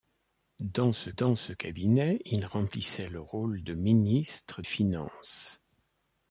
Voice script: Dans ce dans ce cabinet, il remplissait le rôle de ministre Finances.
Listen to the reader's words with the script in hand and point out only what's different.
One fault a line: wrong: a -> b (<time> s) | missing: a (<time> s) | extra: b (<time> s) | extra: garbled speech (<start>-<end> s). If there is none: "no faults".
no faults